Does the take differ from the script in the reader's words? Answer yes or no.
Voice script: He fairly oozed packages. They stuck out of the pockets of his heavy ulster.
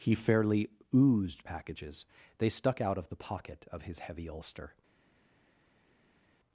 yes